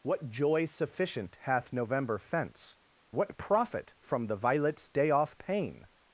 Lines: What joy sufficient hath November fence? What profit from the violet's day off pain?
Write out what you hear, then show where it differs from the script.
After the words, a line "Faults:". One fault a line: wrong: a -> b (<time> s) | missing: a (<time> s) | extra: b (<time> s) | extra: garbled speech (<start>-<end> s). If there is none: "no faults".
What joy sufficient hath November fence? What profit from the violet's day off pain?
Faults:
no faults